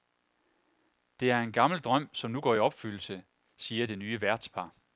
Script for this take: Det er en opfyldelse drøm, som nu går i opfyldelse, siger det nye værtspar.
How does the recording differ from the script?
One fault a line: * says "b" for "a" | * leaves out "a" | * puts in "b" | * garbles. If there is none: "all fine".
* says "gammel" for "opfyldelse"